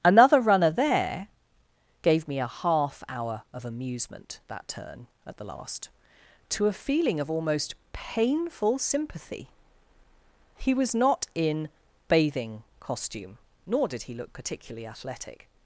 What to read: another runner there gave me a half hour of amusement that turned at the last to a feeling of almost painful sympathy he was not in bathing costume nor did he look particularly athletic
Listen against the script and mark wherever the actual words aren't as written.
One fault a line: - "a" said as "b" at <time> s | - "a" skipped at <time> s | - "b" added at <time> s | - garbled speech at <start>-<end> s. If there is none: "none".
- "turned" said as "turn" at 4.7 s